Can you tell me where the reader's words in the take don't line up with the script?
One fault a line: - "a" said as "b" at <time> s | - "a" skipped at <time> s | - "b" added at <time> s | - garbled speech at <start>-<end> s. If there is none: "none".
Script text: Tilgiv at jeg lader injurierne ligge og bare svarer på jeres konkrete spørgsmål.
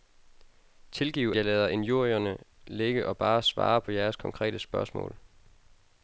- "at" skipped at 1.3 s